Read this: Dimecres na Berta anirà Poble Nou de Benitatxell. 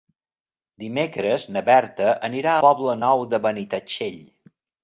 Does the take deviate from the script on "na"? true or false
false